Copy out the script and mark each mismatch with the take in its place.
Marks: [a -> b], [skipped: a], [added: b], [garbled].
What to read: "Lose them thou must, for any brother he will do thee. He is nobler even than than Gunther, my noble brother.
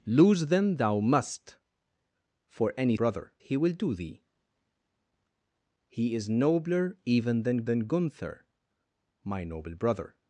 "Lose them thou must, for any brother he will do thee. He is nobler even than than Gunther, my noble brother.